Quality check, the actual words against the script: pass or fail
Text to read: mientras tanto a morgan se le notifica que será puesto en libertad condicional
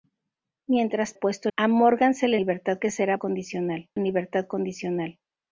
fail